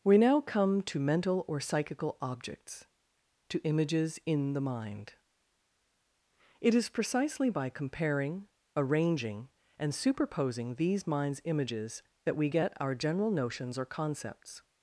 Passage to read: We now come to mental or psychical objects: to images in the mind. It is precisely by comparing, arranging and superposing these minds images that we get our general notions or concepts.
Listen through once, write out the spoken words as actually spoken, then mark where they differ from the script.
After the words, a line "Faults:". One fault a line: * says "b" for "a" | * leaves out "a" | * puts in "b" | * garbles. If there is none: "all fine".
We now come to mental or psychical objects: to images in the mind. It is precisely by comparing, arranging and superposing these minds images that we get our general notions or concepts.
Faults:
all fine